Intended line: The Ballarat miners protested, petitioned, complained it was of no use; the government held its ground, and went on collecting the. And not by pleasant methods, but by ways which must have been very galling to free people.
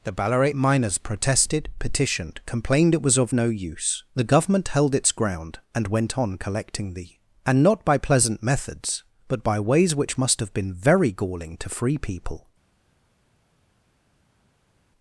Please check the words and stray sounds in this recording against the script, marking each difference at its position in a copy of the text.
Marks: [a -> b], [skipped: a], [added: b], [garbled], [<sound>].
The Ballarat miners protested, petitioned, complained it was of no use; the government held its ground, and went on collecting the. And not by pleasant methods, but by ways which must have been very galling to free people.